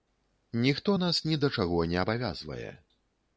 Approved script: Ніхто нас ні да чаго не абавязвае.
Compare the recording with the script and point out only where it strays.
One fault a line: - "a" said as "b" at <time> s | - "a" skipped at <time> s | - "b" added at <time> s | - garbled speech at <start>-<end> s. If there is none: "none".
none